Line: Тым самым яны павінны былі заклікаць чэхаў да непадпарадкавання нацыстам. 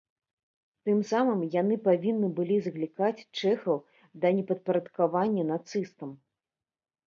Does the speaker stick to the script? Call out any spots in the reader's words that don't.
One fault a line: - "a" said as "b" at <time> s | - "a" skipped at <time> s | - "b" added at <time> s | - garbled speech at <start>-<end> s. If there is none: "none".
none